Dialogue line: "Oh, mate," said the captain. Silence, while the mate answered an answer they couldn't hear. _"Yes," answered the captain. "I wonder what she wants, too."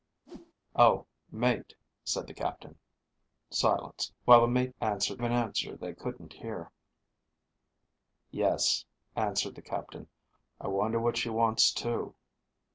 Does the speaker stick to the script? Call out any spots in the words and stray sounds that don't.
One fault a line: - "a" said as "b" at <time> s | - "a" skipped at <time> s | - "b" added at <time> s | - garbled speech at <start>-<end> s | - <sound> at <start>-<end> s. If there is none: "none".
- whoosh at 0.3-0.5 s